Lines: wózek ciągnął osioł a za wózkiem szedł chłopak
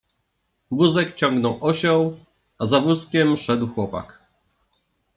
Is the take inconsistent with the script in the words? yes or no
no